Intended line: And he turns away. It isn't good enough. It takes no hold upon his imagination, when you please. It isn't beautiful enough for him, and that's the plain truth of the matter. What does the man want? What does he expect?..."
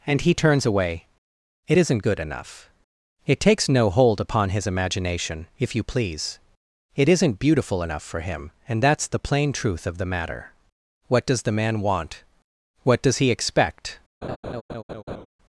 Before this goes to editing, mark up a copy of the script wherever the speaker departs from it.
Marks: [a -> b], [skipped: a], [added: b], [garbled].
And he turns away. It isn't good enough. It takes no hold upon his imagination, [when -> if] you please. It isn't beautiful enough for him, and that's the plain truth of the matter. What does the man want? What does he expect?..."